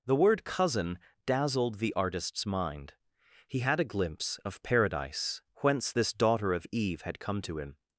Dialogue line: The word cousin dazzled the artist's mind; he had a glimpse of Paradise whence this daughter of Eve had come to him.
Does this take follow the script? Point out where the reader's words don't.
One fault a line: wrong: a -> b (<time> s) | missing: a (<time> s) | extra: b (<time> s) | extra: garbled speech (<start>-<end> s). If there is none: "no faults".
no faults